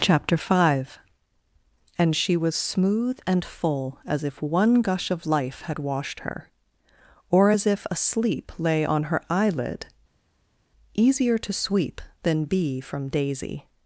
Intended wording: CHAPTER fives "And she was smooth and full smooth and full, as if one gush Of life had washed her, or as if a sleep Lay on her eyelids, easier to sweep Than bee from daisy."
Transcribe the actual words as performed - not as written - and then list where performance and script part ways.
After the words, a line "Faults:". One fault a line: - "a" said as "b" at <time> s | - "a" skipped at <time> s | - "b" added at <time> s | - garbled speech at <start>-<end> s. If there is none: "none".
CHAPTER five "And she was smooth and full, as if one gush Of life had washed her, or as if a sleep Lay on her eyelid, easier to sweep Than bee from daisy."
Faults:
- "fives" said as "five" at 0.3 s
- "smooth and full" skipped at 4.0 s
- "eyelids" said as "eyelid" at 9.3 s